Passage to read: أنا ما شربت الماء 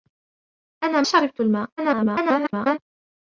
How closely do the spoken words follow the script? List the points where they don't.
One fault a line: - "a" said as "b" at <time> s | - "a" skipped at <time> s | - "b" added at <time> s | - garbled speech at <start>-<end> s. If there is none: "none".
- "ما" skipped at 1.0 s
- garbled speech at 1.8-2.8 s